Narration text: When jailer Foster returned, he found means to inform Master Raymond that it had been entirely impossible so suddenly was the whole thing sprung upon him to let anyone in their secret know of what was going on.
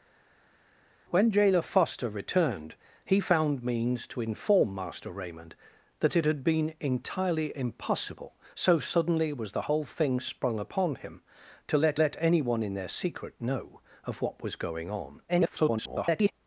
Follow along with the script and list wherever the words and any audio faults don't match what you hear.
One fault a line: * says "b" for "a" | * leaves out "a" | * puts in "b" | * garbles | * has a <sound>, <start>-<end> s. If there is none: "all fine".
* puts in "let"
* garbles